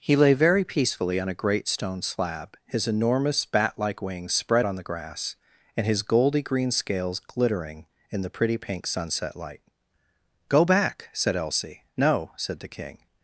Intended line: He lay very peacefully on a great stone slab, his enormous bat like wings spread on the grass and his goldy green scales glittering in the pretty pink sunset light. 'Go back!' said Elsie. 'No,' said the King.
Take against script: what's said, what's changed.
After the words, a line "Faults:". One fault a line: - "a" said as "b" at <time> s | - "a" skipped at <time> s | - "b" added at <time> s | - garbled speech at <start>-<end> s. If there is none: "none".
He lay very peacefully on a great stone slab, his enormous bat like wings spread on the grass and his goldy green scales glittering in the pretty pink sunset light. 'Go back!' said Elsie. 'No,' said the King.
Faults:
none